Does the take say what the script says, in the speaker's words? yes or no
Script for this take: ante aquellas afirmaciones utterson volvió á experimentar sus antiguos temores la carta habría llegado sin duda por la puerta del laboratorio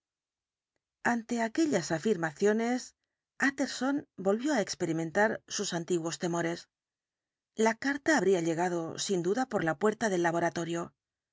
yes